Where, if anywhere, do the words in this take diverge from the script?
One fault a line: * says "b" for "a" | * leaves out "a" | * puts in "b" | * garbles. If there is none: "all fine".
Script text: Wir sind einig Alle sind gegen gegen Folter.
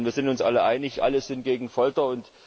* puts in "uns alle"
* leaves out "gegen"